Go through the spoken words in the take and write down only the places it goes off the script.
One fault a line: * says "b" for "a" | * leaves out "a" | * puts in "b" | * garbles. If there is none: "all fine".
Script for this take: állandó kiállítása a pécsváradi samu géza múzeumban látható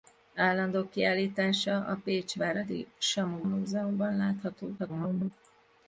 * leaves out "géza"
* garbles